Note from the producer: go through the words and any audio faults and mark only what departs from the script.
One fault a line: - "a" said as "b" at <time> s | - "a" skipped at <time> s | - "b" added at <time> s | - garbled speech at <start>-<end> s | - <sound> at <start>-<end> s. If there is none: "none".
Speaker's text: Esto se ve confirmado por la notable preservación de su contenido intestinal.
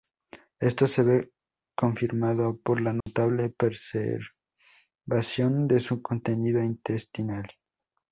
- dropout at 3.0-3.1 s